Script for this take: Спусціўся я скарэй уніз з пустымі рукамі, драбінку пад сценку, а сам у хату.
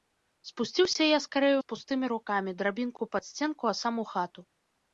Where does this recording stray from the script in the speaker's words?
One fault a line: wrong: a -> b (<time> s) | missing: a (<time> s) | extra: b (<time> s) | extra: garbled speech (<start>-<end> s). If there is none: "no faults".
missing: уніз (1.5 s)